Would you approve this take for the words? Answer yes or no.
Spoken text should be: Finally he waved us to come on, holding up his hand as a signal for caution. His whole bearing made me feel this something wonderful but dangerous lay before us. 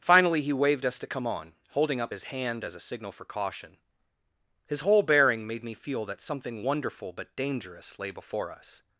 no